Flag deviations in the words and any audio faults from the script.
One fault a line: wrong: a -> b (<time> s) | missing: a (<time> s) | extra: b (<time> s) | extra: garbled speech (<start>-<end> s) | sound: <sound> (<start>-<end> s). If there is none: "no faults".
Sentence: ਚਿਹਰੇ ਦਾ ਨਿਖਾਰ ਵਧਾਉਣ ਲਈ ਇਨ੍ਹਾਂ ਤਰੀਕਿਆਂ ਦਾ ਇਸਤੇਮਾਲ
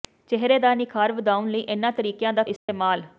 sound: dropout (2.6-2.7 s)